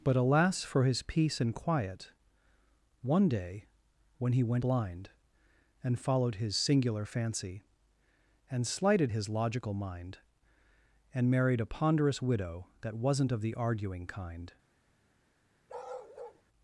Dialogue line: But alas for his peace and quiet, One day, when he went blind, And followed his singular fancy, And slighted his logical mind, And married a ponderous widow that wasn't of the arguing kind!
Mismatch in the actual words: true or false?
false